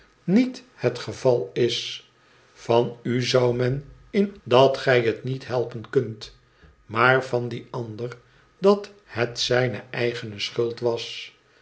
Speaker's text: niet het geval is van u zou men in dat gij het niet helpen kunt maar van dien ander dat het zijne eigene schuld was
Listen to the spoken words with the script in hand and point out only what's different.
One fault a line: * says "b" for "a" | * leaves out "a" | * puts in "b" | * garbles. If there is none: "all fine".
all fine